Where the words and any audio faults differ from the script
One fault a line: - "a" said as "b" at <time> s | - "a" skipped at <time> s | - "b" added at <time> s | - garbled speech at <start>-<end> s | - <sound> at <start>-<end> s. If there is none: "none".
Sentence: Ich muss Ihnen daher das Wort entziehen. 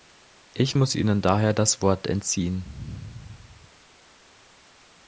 none